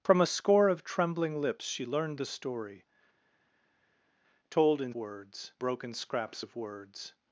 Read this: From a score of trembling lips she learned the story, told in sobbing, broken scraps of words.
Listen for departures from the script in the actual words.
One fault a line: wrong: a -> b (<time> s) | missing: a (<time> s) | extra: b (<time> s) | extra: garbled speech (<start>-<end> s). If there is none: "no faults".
wrong: sobbing -> words (4.9 s)